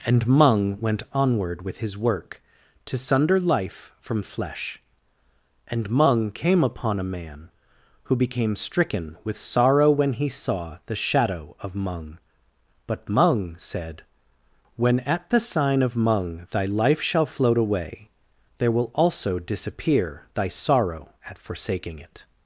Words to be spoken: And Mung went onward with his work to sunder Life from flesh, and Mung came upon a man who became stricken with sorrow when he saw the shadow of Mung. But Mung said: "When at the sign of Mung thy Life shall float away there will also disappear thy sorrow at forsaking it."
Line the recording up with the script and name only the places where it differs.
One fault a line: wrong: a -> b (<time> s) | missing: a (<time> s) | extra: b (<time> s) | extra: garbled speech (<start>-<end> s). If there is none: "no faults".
no faults